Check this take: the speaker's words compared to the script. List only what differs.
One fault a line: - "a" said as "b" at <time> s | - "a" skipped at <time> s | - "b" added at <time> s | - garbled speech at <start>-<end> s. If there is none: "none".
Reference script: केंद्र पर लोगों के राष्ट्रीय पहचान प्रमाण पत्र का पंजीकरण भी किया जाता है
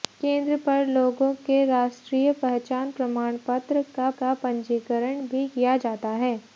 - "का" added at 4.2 s